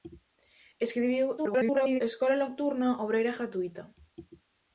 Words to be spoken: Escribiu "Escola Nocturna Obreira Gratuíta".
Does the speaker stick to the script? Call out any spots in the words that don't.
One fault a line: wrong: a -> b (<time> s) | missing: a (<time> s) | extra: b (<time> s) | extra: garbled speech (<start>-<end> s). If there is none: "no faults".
extra: garbled speech (1.4-2.0 s)